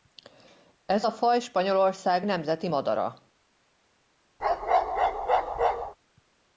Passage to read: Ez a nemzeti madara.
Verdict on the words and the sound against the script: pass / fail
fail